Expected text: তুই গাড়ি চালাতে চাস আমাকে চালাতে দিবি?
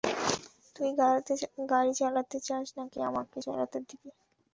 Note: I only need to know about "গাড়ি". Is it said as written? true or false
true